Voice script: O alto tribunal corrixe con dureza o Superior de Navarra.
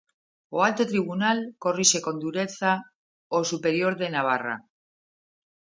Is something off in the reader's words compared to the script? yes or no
no